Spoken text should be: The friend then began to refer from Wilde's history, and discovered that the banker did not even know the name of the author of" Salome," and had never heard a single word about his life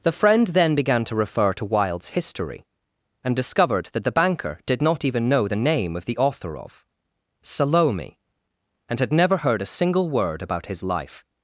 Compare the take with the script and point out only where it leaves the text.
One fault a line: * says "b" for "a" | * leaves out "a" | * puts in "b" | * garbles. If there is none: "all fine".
* says "to" for "from"